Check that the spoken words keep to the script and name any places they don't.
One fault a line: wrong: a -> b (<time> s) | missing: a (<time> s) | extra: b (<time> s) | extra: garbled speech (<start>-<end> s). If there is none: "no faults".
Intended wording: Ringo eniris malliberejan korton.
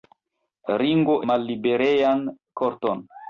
missing: eniris (1.2 s)